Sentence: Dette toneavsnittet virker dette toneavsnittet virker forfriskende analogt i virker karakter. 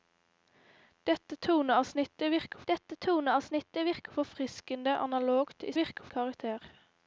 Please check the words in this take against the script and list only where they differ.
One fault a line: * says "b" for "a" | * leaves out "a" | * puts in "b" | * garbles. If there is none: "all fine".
all fine